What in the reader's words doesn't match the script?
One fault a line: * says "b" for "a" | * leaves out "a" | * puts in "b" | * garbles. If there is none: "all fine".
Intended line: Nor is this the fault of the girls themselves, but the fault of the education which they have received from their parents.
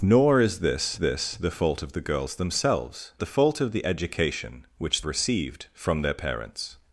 * puts in "this"
* leaves out "but"
* leaves out "they have"